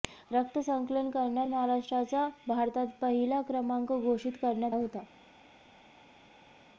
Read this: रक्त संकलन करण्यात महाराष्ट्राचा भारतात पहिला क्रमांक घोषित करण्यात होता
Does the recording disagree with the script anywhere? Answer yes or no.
no